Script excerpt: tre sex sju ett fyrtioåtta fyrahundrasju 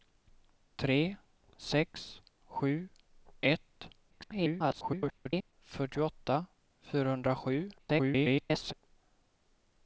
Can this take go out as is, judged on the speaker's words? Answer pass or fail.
fail